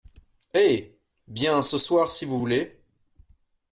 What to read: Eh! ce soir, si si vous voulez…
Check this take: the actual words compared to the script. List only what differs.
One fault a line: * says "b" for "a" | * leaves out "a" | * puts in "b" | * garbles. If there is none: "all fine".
* puts in "bien"
* leaves out "si"